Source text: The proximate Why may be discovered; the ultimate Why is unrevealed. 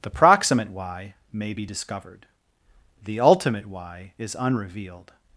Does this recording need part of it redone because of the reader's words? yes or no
no